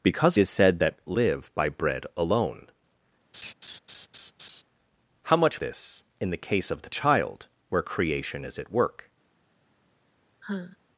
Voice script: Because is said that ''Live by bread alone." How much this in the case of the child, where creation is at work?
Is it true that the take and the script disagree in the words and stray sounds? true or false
true